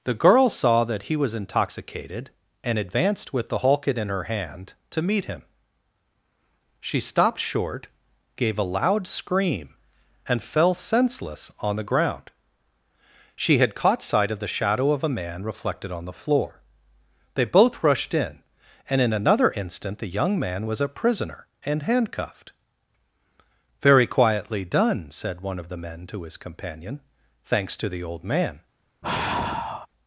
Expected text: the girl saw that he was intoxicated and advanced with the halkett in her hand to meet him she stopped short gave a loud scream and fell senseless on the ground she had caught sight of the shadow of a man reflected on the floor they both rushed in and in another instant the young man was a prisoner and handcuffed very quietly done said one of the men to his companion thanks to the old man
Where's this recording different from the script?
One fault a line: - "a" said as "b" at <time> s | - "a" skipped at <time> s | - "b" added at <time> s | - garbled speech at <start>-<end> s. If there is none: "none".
none